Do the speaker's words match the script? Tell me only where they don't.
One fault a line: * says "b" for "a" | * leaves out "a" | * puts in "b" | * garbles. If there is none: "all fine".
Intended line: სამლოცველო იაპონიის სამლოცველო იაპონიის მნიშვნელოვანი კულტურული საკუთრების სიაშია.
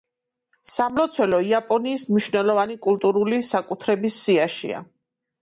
* leaves out "სამლოცველო იაპონიის"